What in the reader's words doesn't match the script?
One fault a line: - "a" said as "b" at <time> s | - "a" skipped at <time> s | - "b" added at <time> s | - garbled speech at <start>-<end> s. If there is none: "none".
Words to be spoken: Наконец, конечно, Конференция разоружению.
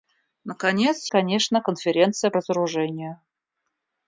none